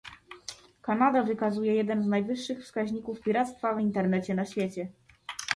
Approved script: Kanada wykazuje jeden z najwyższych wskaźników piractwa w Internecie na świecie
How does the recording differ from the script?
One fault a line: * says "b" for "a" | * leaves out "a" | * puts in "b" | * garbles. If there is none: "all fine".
all fine